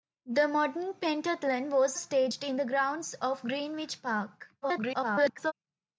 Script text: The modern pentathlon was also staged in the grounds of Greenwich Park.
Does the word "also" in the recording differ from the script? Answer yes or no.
yes